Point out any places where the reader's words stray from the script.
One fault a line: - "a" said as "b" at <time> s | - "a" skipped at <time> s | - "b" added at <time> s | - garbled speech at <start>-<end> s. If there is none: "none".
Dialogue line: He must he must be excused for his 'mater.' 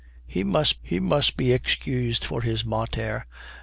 none